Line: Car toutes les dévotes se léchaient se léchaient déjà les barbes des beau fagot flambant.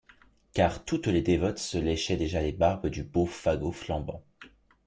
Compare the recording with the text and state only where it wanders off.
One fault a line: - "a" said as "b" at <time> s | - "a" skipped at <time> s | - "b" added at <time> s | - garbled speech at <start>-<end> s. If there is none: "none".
- "se léchaient" skipped at 2.2 s
- "des" said as "du" at 2.9 s